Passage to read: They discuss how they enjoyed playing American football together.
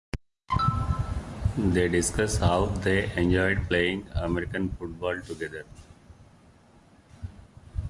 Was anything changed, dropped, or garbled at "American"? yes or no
no